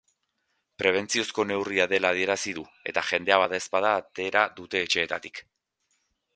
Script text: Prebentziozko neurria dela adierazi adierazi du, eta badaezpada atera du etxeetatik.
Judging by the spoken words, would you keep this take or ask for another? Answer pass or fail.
fail